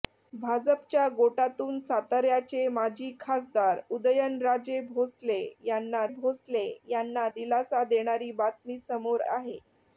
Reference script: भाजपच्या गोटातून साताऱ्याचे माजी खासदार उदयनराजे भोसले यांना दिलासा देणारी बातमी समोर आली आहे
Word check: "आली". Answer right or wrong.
wrong